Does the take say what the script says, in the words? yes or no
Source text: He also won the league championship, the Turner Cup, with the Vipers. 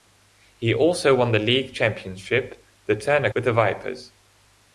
no